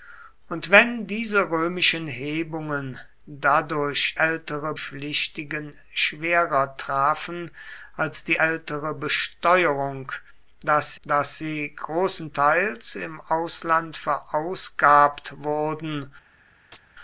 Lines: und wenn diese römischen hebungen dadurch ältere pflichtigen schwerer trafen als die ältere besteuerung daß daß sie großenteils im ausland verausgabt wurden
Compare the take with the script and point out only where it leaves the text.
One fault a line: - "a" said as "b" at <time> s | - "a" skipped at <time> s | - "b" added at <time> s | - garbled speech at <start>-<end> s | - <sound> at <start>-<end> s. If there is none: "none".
- chirp at 16.7-16.8 s